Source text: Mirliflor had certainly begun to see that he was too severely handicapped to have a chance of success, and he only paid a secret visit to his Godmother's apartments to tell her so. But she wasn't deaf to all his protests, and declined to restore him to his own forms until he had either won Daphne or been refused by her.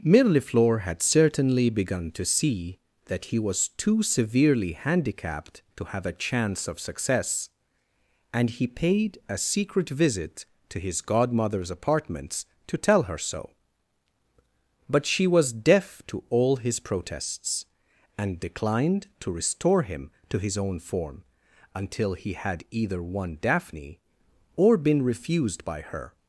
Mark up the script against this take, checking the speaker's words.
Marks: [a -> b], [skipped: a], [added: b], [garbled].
Mirliflor had certainly begun to see that he was too severely handicapped to have a chance of success, and he [skipped: only] paid a secret visit to his Godmother's apartments to tell her so. But she [wasn't -> was] deaf to all his protests, and declined to restore him to his own [forms -> form] until he had either won Daphne or been refused by her.